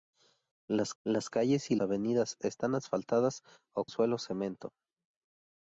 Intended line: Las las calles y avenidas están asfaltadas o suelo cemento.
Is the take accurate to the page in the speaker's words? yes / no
yes